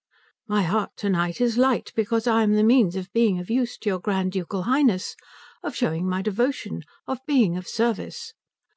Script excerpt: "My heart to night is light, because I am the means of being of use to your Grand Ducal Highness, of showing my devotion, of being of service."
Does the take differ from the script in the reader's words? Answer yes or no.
no